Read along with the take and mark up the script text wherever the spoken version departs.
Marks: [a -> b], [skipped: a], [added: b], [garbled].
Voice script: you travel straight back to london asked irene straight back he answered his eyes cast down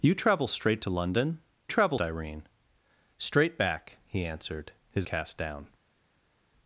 you travel straight [skipped: back] to london [asked -> travel] irene straight back he answered his [skipped: eyes] cast down